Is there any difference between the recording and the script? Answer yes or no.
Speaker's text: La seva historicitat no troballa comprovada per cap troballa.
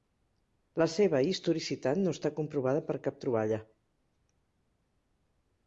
yes